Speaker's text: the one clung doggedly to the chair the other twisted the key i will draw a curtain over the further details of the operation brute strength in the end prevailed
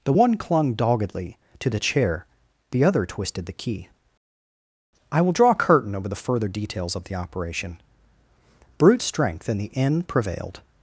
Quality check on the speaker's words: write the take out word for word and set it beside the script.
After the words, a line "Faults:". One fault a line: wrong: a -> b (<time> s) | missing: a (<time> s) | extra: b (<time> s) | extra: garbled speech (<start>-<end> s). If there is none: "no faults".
the one clung doggedly to the chair the other twisted the key i will draw a curtain over the further details of the operation brute strength in the end prevailed
Faults:
no faults